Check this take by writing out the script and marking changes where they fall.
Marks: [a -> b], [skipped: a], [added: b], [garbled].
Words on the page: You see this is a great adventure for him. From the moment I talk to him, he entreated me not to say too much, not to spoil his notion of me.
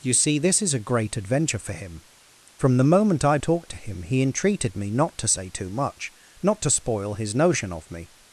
You see this is a great adventure for him. From the moment I talk to him, he entreated me not to say too much, not to spoil his notion of me.